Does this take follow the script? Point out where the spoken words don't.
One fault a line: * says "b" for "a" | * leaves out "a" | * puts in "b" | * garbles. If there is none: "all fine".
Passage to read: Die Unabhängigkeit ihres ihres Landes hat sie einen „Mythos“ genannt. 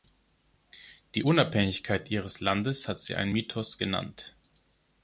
* leaves out "ihres"